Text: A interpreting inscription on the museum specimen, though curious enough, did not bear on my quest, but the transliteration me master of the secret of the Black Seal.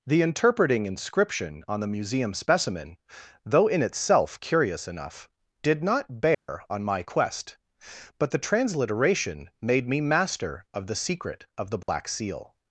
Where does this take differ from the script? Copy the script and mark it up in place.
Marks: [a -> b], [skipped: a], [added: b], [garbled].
[A -> The] interpreting inscription on the museum specimen, though [added: in itself] curious enough, did not bear on my quest, but the transliteration [added: made] me master of the secret of the Black Seal.